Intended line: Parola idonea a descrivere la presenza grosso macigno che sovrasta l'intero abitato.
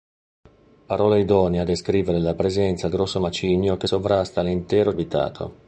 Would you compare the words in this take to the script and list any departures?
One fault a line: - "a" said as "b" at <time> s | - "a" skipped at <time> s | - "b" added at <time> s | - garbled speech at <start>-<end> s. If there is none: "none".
none